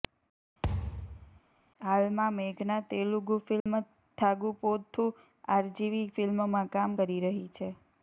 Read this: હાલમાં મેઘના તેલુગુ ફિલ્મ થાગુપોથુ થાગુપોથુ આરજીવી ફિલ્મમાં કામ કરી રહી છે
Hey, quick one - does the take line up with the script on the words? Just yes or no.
no